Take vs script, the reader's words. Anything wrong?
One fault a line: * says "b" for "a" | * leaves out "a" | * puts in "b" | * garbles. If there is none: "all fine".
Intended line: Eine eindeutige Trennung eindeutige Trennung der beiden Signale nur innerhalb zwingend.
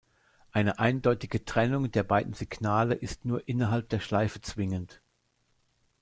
* leaves out "eindeutige Trennung"
* puts in "ist"
* puts in "der Schleife"